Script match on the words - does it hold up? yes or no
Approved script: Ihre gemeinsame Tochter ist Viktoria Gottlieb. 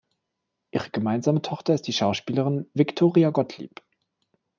no